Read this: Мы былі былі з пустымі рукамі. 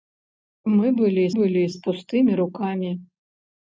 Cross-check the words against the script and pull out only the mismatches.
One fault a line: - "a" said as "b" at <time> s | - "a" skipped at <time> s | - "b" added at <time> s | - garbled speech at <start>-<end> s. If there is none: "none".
none